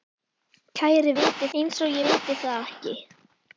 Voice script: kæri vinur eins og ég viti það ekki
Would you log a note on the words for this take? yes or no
yes